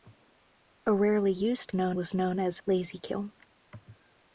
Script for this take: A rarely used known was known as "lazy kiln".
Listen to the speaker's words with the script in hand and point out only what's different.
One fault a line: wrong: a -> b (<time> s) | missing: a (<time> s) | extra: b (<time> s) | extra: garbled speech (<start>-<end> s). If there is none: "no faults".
no faults